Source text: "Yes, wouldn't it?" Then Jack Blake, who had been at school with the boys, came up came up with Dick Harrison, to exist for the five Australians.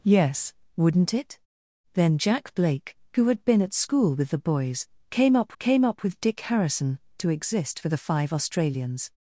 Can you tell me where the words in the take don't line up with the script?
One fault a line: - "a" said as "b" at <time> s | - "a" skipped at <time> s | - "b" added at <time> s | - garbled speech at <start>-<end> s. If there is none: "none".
none